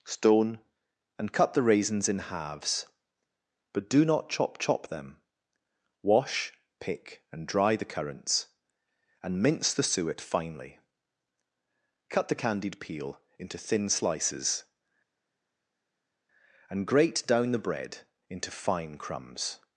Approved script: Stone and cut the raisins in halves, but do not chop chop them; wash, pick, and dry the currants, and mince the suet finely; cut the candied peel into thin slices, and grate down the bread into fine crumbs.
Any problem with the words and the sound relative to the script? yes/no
no